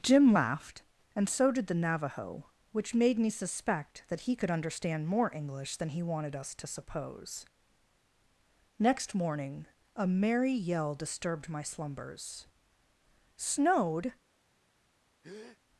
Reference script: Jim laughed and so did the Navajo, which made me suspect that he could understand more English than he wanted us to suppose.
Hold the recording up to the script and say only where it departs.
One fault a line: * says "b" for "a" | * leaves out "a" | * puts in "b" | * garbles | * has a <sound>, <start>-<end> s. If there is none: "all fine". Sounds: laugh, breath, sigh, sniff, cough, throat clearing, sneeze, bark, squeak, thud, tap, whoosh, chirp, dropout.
* puts in "Next morning a merry yell disturbed my slumbers Snowed"
* has a breath, 15.2-15.6 s